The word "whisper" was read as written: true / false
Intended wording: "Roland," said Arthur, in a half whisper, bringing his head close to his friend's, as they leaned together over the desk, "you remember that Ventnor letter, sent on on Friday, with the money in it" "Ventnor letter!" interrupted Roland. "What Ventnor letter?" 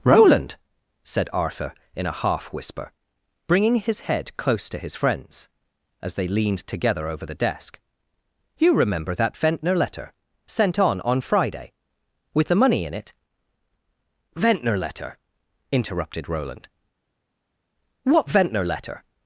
true